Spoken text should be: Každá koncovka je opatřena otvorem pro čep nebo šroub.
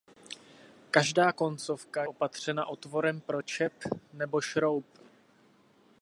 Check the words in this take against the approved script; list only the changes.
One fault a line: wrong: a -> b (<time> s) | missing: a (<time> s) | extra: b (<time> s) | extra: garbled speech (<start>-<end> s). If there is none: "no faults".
missing: je (2.0 s)